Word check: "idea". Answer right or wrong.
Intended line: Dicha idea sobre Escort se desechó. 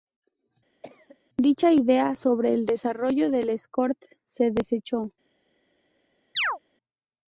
right